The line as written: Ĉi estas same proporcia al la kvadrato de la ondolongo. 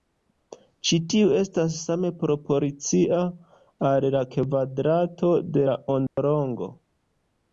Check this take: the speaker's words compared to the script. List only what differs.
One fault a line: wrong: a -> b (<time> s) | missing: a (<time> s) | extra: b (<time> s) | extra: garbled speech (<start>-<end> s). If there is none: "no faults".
extra: tiu (1.1 s)